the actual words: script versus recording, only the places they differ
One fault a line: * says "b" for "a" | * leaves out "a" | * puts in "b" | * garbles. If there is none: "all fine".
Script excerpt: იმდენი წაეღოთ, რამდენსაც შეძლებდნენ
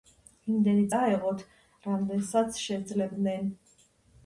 all fine